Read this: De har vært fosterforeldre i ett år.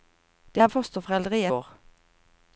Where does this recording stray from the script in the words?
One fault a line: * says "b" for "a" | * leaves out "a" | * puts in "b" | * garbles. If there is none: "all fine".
* leaves out "vært"
* leaves out "ett"